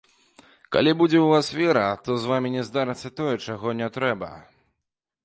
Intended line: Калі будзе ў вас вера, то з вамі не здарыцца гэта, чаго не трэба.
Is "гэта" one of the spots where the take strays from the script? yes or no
yes